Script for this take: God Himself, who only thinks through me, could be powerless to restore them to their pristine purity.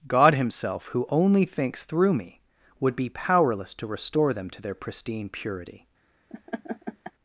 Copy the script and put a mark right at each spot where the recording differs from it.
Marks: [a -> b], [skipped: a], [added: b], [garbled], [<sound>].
God Himself, who only thinks through me, [could -> would] be powerless to restore them to their pristine purity. [laugh]